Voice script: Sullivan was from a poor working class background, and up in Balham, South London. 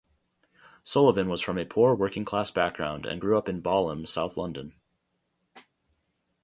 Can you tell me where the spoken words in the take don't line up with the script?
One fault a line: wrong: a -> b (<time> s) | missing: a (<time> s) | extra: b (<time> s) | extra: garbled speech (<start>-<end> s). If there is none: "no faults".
extra: grew (3.2 s)